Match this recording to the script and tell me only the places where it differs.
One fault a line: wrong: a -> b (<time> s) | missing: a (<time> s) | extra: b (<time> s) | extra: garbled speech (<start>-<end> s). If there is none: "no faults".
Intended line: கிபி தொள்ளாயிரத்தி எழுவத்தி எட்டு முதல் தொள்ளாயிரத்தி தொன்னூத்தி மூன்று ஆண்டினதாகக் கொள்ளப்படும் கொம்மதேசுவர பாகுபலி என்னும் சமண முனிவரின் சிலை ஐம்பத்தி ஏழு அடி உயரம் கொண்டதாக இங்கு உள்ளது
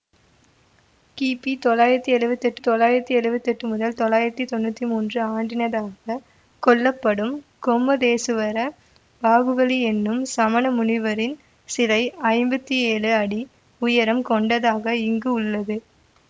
extra: தொள்ளாயிரத்தி எழுவத்தி எட்டு (2.6 s)